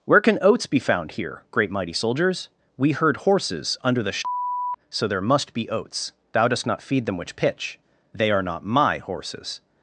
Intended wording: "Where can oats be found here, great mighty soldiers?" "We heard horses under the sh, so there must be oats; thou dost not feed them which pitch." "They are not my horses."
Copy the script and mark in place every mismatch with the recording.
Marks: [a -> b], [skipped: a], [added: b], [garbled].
"Where can oats be found here, great mighty soldiers?" "We heard horses under the sh, so there must be oats; thou dost not feed them which pitch." "They are not my horses."